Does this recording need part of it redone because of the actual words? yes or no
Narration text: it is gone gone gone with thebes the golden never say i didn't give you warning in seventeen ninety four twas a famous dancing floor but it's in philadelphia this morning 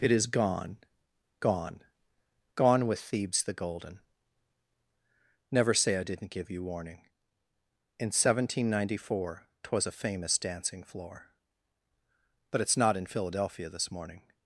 yes